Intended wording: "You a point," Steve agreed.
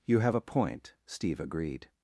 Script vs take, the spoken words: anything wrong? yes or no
yes